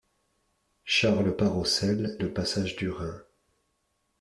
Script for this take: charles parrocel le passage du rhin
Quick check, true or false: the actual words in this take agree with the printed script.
true